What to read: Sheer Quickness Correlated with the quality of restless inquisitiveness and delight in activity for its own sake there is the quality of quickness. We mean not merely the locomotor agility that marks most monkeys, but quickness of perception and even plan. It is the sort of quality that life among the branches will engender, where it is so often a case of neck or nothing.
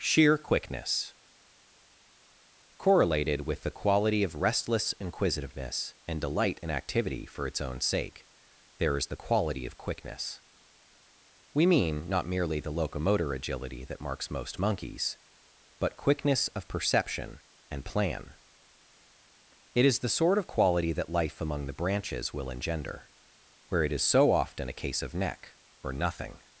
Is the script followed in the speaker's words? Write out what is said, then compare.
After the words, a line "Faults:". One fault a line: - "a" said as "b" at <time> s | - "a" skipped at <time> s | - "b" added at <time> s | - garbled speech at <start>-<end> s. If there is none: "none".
Sheer Quickness Correlated with the quality of restless inquisitiveness and delight in activity for its own sake there is the quality of quickness. We mean not merely the locomotor agility that marks most monkeys, but quickness of perception and plan. It is the sort of quality that life among the branches will engender, where it is so often a case of neck or nothing.
Faults:
- "even" skipped at 17.9 s